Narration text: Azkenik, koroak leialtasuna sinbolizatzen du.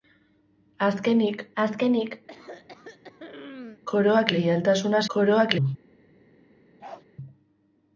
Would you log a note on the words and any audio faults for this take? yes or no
yes